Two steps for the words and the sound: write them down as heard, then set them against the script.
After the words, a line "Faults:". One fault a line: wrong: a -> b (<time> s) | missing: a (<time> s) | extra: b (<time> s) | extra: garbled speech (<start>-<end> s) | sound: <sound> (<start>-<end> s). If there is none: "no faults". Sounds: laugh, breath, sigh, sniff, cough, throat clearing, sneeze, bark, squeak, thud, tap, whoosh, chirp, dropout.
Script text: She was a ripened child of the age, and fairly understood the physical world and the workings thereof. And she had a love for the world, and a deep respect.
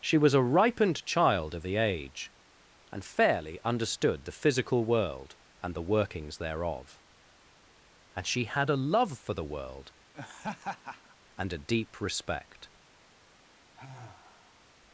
She was a ripened child of the age, and fairly understood the physical world and the workings thereof. And she had a love for the world, and a deep respect.
Faults:
sound: laugh (10.1-11.2 s)
sound: sigh (13.7-14.7 s)